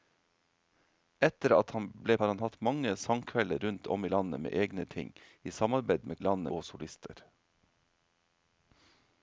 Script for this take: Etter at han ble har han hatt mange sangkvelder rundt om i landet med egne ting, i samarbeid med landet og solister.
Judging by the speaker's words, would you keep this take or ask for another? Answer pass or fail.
pass